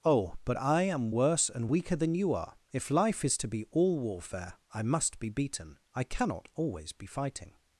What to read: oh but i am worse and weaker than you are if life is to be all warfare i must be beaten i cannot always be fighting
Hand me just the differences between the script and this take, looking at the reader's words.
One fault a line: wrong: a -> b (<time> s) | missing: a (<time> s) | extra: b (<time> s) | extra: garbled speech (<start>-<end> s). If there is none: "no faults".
no faults